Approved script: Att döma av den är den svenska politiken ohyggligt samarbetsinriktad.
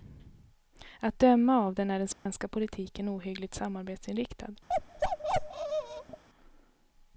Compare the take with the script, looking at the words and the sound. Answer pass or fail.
fail